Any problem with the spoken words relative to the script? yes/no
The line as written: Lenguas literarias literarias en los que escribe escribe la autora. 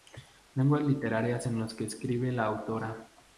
yes